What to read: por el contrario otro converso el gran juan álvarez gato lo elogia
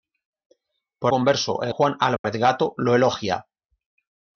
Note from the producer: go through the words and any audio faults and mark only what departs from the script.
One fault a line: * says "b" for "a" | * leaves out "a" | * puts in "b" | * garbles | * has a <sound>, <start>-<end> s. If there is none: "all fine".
* leaves out "el contrario otro"
* leaves out "gran"
* has a dropout, 2.2-2.2 s